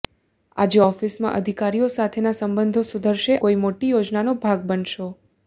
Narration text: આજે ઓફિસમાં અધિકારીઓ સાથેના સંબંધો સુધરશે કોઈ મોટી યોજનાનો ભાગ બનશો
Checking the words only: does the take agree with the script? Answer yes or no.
yes